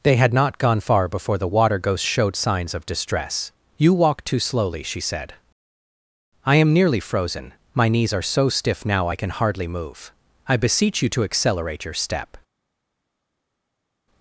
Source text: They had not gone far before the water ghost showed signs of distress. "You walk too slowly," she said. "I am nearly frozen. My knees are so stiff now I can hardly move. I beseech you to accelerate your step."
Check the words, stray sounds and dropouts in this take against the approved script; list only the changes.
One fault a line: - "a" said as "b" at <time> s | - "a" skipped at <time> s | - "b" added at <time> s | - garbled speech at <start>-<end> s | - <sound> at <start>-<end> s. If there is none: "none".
none